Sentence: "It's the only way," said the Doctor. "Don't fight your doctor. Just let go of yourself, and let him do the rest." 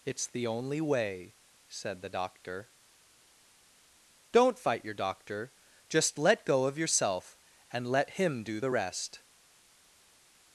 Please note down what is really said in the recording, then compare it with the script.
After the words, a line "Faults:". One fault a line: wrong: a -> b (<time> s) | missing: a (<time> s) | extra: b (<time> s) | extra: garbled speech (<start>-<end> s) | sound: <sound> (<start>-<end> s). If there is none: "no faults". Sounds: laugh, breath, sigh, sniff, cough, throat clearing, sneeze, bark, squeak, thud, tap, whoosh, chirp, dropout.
"It's the only way," said the Doctor. "Don't fight your doctor. Just let go of yourself, and let him do the rest."
Faults:
no faults